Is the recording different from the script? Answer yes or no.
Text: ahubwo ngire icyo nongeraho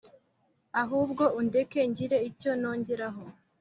yes